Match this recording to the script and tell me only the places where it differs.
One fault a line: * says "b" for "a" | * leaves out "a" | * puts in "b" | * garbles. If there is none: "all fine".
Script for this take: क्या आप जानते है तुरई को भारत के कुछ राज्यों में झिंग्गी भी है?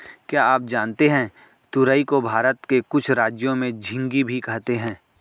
* puts in "कहते"